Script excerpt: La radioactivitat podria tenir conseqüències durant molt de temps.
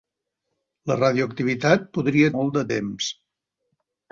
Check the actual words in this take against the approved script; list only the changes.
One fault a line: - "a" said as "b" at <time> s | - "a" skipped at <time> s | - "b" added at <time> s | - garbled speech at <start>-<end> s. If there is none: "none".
- "tenir conseqüències durant" skipped at 2.3 s